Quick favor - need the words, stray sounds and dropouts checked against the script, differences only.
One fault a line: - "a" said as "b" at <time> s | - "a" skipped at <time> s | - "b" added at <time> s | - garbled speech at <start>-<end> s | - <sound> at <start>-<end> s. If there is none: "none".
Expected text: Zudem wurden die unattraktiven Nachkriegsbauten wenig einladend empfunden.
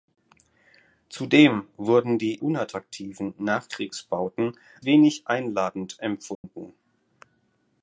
- dropout at 6.3-6.4 s